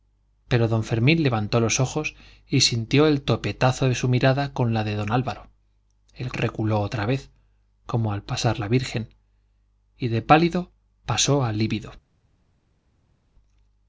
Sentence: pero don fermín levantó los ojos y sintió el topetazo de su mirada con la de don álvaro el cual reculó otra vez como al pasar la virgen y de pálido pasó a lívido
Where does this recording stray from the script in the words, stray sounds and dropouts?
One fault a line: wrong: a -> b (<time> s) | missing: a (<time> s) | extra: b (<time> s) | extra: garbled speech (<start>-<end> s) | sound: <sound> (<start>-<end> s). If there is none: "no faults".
missing: cual (6.3 s)